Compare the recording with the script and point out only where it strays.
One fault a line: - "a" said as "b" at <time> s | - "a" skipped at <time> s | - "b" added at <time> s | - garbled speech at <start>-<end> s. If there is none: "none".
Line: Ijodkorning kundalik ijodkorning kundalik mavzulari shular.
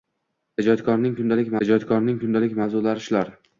none